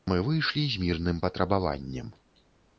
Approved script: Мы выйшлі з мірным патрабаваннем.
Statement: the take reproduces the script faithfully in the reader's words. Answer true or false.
true